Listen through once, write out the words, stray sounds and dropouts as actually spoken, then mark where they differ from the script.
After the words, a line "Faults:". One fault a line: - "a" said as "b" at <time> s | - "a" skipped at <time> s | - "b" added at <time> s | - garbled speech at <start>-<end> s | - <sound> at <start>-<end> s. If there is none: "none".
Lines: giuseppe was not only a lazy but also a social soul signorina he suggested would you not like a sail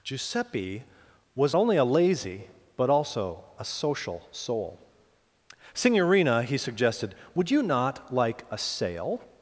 giuseppe was only a lazy but also a social soul signorina he suggested would you not like a sail
Faults:
- "not" skipped at 1.6 s